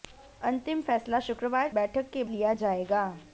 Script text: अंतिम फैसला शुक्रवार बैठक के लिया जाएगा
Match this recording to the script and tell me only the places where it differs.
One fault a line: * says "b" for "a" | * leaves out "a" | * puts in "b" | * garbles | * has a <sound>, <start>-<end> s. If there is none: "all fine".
all fine